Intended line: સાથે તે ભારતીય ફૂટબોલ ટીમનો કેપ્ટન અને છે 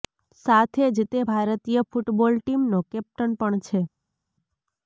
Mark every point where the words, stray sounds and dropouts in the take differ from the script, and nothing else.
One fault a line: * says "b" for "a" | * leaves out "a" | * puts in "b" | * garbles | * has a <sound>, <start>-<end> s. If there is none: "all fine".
* puts in "જ"
* says "પણ" for "અને"